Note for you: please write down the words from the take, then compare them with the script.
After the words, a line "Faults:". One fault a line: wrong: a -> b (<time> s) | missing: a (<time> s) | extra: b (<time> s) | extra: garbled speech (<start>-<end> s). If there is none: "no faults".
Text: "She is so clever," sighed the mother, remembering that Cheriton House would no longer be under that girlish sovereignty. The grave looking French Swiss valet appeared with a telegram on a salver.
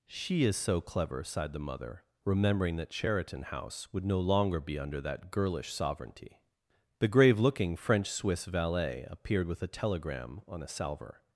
"She is so clever," sighed the mother, remembering that Cheriton House would no longer be under that girlish sovereignty. The grave looking French Swiss valet appeared with a telegram on a salver.
Faults:
no faults